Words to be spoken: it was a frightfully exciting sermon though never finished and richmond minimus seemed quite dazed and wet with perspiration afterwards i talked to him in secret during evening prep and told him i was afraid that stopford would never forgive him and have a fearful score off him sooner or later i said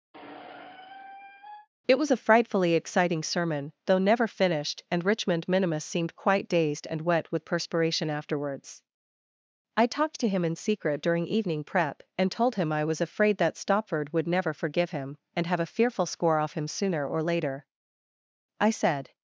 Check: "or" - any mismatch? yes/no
no